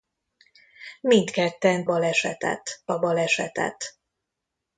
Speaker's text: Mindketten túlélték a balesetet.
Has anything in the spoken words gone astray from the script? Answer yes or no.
yes